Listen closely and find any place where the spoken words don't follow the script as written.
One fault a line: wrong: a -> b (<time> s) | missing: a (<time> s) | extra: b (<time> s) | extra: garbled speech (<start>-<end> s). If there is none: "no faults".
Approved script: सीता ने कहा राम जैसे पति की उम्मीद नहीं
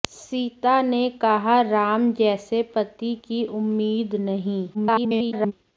extra: garbled speech (4.7-5.5 s)